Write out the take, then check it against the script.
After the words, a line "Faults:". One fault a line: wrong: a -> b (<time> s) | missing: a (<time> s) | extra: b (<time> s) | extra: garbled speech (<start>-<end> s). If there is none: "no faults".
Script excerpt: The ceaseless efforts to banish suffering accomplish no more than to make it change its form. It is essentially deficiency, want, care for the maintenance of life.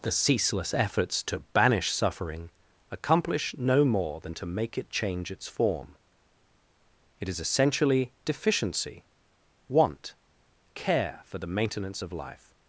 The ceaseless efforts to banish suffering accomplish no more than to make it change its form. It is essentially deficiency, want, care for the maintenance of life.
Faults:
no faults